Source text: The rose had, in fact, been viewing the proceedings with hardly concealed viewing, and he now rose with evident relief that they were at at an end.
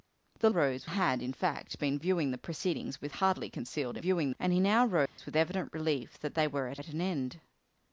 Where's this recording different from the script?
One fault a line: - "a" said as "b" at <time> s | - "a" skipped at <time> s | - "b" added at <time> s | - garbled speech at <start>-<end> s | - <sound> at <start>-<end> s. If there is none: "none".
- dropout at 5.1-5.2 s